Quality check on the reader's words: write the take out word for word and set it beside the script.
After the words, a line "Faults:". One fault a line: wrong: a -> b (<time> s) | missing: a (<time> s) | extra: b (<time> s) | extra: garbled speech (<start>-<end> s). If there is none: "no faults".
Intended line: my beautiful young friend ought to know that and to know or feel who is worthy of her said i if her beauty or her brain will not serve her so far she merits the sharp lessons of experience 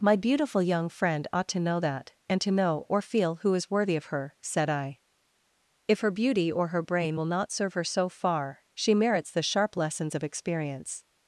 my beautiful young friend ought to know that and to know or feel who is worthy of her said i if her beauty or her brain will not serve her so far she merits the sharp lessons of experience
Faults:
no faults